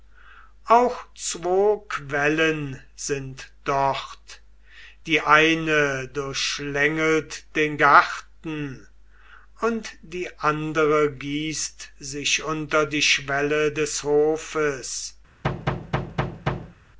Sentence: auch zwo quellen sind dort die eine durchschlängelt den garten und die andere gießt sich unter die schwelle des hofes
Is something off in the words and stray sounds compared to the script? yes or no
yes